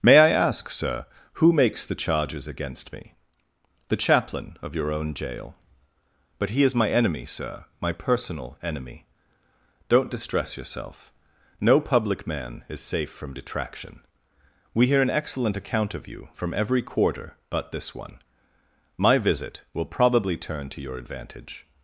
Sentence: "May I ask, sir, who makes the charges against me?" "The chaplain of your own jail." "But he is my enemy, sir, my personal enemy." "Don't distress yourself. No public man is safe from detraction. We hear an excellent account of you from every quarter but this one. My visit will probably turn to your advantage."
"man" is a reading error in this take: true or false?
false